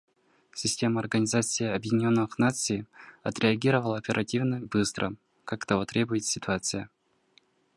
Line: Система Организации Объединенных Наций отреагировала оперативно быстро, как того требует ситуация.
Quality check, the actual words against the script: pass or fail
pass